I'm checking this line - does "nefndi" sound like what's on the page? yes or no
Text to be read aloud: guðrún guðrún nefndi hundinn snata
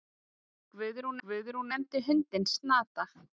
yes